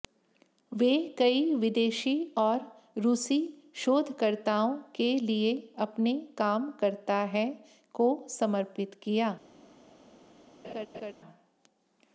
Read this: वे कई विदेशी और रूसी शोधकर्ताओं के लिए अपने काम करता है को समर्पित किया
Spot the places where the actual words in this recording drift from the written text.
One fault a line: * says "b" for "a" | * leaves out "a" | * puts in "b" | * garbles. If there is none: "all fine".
all fine